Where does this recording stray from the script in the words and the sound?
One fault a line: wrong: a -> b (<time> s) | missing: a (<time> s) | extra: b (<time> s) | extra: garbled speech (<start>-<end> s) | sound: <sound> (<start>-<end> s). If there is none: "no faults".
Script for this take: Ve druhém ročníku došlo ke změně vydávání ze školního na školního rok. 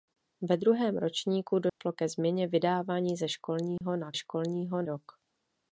sound: dropout (1.7-1.8 s)
sound: dropout (3.8-3.8 s)